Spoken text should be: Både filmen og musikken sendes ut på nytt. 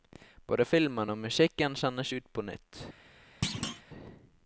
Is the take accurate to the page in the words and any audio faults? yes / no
no